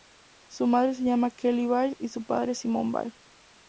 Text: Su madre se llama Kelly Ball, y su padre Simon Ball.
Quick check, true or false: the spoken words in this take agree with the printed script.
true